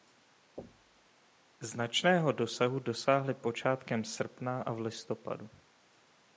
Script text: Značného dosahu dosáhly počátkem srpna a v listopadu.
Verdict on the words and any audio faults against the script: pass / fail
fail